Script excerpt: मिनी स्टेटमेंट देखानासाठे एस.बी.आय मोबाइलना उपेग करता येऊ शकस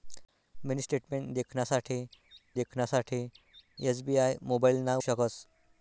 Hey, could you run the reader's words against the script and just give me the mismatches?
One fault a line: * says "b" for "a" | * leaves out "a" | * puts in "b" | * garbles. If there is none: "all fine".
* puts in "देखानासाठे"
* leaves out "उपेग करता येऊ"